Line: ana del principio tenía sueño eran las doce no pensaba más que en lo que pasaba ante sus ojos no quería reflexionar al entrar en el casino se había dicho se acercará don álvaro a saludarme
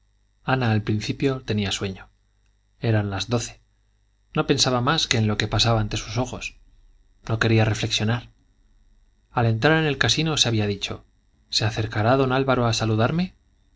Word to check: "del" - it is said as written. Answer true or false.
false